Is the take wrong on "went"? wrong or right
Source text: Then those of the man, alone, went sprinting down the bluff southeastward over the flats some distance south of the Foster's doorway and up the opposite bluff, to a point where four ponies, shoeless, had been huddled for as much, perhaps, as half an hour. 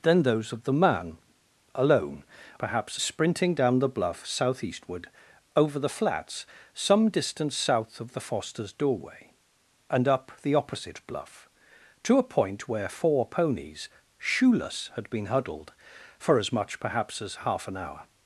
wrong